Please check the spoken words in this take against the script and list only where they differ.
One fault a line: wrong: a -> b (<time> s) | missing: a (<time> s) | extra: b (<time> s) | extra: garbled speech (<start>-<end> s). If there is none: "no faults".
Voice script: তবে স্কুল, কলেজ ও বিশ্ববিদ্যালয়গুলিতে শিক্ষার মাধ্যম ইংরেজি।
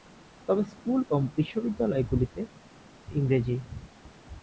missing: কলেজ (1.0 s)
missing: শিক্ষার মাধ্যম (2.4 s)